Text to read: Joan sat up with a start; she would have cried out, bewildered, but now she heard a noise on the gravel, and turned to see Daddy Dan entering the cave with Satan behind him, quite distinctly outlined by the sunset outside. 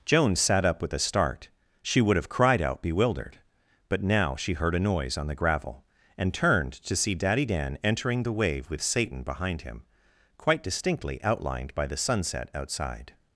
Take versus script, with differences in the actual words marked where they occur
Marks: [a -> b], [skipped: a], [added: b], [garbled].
Joan sat up with a start; she would have cried out, bewildered, but now she heard a noise on the gravel, and turned to see Daddy Dan entering the [cave -> wave] with Satan behind him, quite distinctly outlined by the sunset outside.